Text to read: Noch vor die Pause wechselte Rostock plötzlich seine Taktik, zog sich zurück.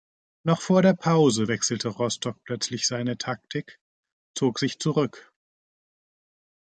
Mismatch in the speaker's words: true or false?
true